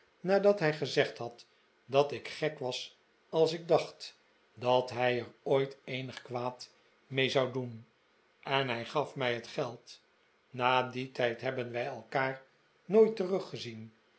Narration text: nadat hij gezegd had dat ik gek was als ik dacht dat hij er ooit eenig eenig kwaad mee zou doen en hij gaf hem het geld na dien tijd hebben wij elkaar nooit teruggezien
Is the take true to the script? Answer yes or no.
no